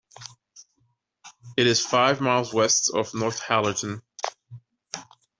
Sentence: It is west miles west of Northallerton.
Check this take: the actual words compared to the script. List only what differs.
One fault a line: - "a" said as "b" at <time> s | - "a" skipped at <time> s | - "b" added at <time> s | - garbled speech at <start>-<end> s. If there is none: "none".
- "west" said as "five" at 1.9 s